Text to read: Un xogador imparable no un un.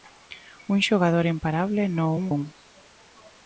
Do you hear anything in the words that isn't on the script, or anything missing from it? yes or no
no